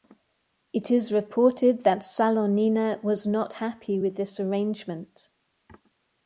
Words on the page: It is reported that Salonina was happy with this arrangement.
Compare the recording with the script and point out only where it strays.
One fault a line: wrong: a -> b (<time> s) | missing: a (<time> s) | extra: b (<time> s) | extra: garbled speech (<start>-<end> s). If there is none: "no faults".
extra: not (3.3 s)